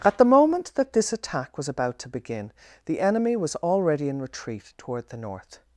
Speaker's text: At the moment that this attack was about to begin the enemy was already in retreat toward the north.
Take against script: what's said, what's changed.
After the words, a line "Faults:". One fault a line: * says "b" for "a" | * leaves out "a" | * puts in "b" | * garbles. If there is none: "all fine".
At the moment that this attack was about to begin the enemy was already in retreat toward the north.
Faults:
all fine